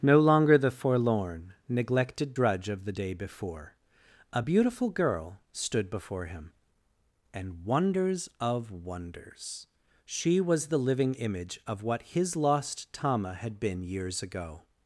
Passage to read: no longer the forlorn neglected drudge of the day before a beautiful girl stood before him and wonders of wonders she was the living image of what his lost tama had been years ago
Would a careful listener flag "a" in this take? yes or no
no